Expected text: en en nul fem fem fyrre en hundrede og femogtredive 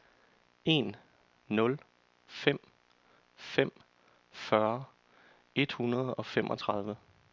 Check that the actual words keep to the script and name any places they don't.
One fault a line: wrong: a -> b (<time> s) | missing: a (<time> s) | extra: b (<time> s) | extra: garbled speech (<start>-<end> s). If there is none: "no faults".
missing: en (0.9 s)
wrong: en -> et (5.5 s)